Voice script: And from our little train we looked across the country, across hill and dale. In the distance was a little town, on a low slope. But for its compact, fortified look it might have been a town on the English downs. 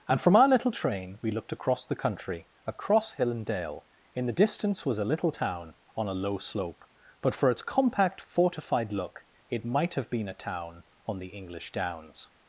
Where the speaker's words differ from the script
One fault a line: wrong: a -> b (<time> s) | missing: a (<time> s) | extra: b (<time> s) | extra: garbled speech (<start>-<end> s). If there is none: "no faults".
no faults